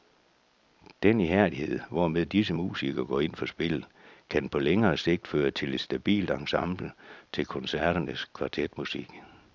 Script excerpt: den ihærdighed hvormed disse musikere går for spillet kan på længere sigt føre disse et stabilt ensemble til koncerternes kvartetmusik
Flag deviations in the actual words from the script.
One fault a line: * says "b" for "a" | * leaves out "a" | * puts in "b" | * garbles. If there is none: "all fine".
* puts in "ind"
* says "til" for "disse"